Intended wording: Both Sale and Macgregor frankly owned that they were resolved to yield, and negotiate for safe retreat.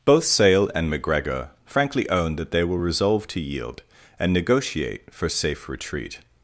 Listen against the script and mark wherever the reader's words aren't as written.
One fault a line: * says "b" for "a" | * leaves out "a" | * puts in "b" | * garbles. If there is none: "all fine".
all fine